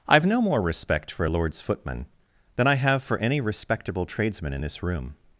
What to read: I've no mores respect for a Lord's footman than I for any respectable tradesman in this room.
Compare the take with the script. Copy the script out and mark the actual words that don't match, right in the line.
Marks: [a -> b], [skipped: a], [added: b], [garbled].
I've no [mores -> more] respect for a Lord's footman than I [added: have] for any respectable tradesman in this room.